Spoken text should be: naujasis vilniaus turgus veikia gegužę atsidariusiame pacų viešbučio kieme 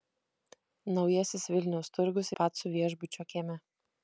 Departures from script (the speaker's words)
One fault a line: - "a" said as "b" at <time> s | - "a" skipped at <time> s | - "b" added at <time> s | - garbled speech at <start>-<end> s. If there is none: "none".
- "veikia gegužę atsidariusiame" skipped at 2.3 s